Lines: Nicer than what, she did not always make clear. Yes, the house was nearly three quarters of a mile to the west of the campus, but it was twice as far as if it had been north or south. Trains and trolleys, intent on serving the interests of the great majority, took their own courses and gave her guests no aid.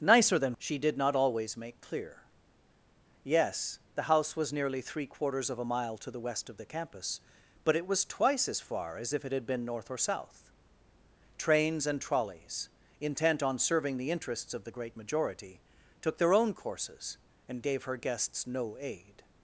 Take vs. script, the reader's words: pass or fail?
fail